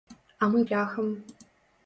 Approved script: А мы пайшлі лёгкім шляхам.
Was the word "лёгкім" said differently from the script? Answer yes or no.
yes